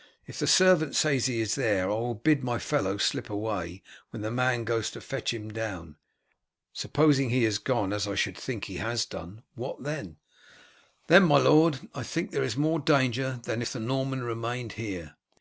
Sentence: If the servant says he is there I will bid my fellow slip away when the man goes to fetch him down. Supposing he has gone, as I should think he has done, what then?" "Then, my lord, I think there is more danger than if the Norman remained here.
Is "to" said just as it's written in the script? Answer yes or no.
yes